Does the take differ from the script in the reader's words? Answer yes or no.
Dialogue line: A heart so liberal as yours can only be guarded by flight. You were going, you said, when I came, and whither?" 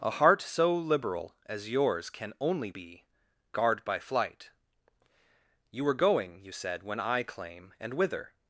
yes